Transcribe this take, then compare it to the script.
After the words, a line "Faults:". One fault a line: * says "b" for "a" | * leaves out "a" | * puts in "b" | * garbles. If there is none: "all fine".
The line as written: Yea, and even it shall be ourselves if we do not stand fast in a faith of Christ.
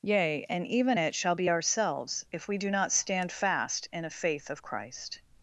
Yea, and even it shall be ourselves if we do not stand fast in a faith of Christ.
Faults:
all fine